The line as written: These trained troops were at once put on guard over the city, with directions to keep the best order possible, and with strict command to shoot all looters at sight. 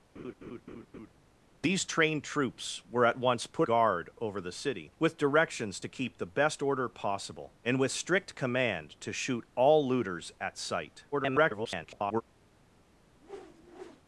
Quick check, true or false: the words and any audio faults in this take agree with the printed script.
false